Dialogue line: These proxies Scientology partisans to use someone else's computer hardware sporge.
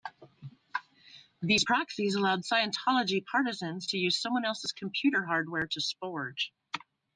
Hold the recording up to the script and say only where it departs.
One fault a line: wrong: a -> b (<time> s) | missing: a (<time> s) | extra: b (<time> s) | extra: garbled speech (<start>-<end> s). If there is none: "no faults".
extra: allowed (2.1 s)
extra: to (5.7 s)